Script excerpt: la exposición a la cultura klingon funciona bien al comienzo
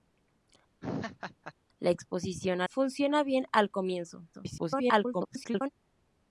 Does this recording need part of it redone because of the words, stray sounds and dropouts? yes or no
yes